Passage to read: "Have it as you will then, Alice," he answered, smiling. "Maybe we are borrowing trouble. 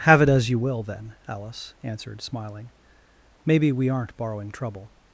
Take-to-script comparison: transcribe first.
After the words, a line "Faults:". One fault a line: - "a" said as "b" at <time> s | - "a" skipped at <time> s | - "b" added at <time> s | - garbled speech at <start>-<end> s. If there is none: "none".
"Have it as you will then, Alice," answered, smiling. "Maybe we aren't borrowing trouble.
Faults:
- "he" skipped at 1.8 s
- "are" said as "aren't" at 3.9 s